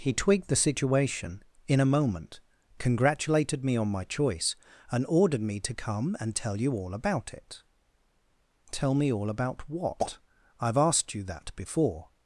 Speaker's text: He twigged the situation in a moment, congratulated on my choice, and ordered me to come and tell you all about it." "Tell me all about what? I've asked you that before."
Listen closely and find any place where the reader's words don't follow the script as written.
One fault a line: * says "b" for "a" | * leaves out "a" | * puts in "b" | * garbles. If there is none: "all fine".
* puts in "me"